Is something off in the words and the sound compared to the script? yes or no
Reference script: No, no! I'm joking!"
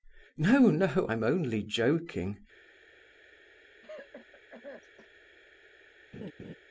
yes